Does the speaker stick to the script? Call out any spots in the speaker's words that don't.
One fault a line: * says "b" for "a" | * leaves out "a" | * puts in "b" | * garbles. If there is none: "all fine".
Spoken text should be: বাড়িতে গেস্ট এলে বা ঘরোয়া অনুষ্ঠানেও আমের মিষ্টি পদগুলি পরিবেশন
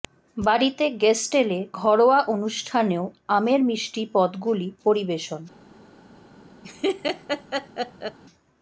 * leaves out "বা"